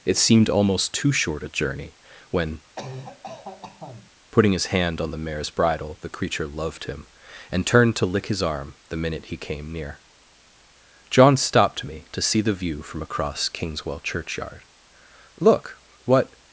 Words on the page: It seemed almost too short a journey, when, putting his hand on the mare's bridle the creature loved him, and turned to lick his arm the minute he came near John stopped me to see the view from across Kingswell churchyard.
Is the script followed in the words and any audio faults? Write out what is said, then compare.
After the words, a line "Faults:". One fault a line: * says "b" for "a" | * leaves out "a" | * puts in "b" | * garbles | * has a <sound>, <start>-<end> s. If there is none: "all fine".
It seemed almost too short a journey, when, putting his hand on the mare's bridle the creature loved him, and turned to lick his arm the minute he came near John stopped me to see the view from across Kingswell churchyard. "Look, what
Faults:
* has a cough, 2.8-4.1 s
* puts in "Look what"